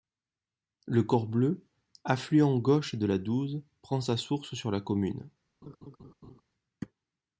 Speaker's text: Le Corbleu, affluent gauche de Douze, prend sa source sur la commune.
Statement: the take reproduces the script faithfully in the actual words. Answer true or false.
false